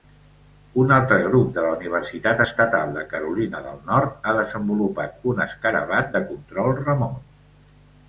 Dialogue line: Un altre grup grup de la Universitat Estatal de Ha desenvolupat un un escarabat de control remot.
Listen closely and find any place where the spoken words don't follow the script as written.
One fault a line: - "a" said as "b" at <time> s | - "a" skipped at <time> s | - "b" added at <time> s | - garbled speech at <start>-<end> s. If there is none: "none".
- "grup" skipped at 1.5 s
- "Carolina del Nord" added at 3.1 s
- "un" skipped at 5.4 s